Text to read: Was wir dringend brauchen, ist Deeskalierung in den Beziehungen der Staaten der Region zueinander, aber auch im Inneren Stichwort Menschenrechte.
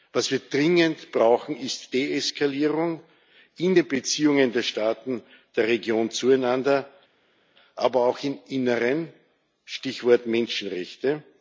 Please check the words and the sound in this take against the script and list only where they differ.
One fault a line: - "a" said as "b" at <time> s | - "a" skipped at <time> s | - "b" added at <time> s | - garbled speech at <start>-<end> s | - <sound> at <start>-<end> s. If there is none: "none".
none